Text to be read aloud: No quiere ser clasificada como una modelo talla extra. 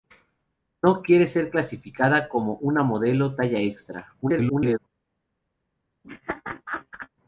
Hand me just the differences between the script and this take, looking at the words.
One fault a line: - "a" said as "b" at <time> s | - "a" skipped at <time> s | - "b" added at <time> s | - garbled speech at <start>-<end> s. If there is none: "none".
- garbled speech at 4.2-4.8 s